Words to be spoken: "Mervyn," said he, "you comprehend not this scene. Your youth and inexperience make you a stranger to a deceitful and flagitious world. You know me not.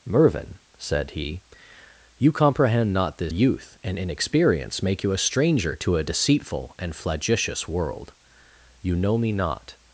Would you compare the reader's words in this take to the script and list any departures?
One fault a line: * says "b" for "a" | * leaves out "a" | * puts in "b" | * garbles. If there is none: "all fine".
* leaves out "scene Your"